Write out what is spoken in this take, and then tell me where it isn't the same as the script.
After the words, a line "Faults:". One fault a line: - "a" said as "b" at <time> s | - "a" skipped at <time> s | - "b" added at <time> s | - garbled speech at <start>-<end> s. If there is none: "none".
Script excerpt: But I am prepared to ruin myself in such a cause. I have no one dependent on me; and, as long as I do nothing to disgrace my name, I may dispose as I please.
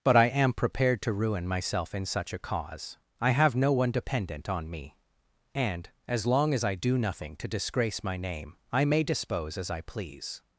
But I am prepared to ruin myself in such a cause. I have no one dependent on me; and, as long as I do nothing to disgrace my name, I may dispose as I please.
Faults:
none